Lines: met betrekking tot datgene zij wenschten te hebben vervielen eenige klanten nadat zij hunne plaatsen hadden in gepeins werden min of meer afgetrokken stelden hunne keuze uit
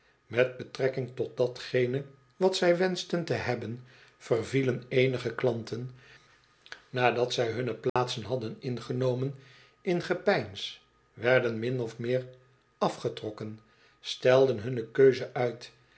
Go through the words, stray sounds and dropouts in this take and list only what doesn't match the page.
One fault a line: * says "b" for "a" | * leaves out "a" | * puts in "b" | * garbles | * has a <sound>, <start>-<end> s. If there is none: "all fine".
* puts in "wat"
* has a dropout, 7.9-8.0 s
* puts in "ingenomen"